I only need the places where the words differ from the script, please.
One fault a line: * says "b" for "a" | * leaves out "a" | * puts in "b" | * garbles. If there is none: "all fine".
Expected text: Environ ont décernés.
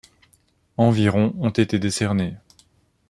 * puts in "été"